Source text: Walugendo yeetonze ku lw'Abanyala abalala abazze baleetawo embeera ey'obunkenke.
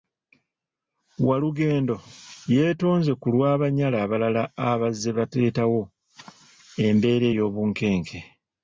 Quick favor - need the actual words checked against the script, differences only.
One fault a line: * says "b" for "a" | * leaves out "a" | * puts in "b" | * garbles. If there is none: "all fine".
all fine